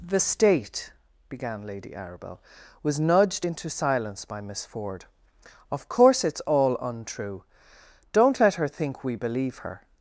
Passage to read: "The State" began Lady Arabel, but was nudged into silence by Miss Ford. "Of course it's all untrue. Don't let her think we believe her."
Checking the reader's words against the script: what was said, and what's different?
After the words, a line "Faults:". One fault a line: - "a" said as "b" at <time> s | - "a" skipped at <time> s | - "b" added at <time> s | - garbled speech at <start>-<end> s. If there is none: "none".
"The State" began Lady Arabel, was nudged into silence by Miss Ford. "Of course it's all untrue. Don't let her think we believe her."
Faults:
- "but" skipped at 2.4 s